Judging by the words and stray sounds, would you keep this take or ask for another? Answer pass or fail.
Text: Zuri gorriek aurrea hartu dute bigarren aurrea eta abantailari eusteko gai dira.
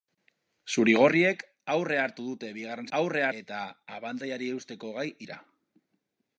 pass